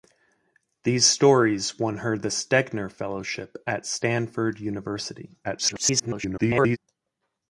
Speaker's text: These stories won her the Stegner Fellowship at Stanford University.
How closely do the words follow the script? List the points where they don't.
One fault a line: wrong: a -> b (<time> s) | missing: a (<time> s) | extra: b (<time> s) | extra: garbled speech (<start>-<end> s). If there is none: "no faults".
extra: garbled speech (5.4-6.8 s)